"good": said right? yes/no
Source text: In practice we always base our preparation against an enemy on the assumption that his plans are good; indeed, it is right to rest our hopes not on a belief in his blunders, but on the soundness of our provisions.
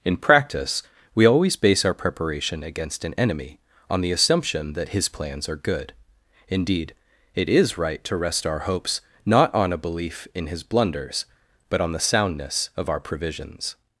yes